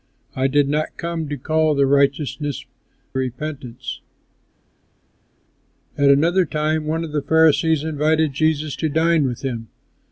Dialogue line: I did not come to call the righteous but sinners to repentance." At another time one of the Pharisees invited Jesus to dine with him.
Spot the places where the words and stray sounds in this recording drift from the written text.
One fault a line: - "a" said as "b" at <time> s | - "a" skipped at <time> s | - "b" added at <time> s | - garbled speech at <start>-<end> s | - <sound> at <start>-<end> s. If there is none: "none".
- "but sinners to" skipped at 2.4 s